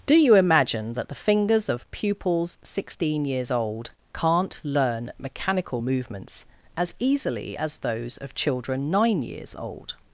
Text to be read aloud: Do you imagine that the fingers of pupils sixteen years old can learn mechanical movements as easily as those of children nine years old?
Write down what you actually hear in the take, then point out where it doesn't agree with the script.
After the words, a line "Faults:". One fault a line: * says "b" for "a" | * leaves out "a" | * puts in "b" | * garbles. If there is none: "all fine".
Do you imagine that the fingers of pupils sixteen years old can't learn mechanical movements as easily as those of children nine years old?
Faults:
* says "can't" for "can"